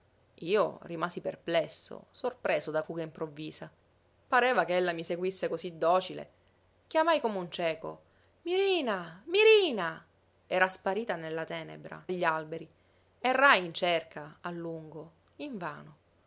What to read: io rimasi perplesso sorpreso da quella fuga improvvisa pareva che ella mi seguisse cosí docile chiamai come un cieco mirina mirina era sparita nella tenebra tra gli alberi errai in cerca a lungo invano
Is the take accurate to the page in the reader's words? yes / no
no